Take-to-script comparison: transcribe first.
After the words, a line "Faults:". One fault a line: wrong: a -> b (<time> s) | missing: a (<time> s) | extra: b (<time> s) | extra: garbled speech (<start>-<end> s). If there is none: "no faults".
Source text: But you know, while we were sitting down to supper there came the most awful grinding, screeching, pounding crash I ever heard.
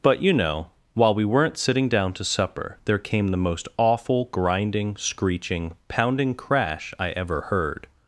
But you know, while we weren't sitting down to supper there came the most awful grinding, screeching, pounding crash I ever heard.
Faults:
wrong: were -> weren't (1.2 s)